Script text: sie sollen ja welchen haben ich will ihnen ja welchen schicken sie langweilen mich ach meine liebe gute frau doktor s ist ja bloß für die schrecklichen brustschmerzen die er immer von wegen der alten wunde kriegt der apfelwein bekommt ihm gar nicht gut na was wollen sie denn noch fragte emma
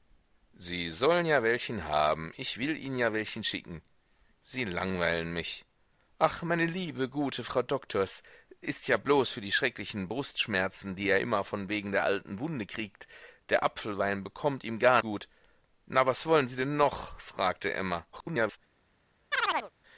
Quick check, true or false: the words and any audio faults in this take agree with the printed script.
false